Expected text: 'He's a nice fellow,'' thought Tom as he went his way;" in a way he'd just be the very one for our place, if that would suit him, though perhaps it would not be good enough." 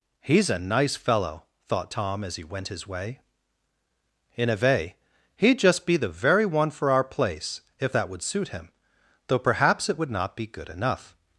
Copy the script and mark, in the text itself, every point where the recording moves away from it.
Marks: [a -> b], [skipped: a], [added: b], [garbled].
'He's a nice fellow,'' thought Tom as he went his way;" in a way he'd just be the very one for our place, if that would suit him, though perhaps it would not be good enough."